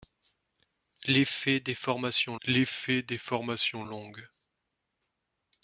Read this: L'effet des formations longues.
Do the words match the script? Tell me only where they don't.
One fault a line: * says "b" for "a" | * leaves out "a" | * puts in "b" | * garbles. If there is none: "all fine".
* puts in "l'effet des formations"